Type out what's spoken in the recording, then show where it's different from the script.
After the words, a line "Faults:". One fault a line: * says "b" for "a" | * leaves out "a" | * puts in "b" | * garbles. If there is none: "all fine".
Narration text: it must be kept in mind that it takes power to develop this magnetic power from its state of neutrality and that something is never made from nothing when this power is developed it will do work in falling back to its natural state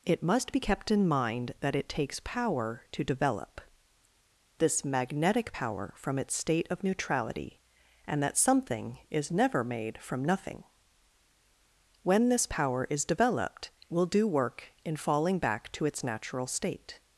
it must be kept in mind that it takes power to develop this magnetic power from its state of neutrality and that something is never made from nothing when this power is developed will do work in falling back to its natural state
Faults:
* leaves out "it"